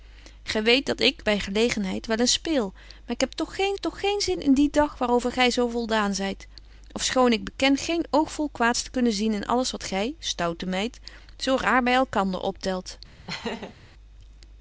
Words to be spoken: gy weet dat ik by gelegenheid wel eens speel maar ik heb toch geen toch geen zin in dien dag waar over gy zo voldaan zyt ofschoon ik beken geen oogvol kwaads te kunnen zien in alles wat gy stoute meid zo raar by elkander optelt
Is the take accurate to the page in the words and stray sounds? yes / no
no